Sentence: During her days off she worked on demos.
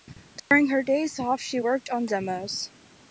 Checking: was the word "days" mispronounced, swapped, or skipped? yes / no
no